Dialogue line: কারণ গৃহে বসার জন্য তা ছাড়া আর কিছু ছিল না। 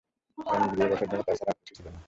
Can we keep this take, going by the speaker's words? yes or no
yes